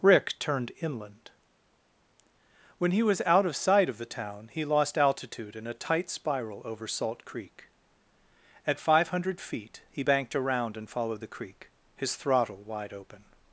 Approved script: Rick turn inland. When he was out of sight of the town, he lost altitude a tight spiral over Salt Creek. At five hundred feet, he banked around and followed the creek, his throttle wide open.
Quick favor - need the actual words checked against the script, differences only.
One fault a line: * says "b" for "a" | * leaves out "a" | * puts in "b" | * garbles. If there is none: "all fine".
* says "turned" for "turn"
* puts in "in"